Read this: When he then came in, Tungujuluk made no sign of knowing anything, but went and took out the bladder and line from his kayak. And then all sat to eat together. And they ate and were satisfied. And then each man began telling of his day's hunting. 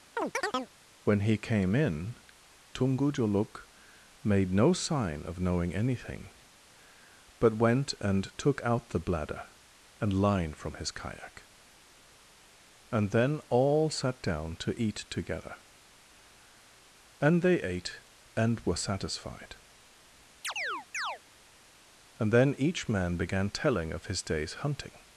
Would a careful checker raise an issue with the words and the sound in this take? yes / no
yes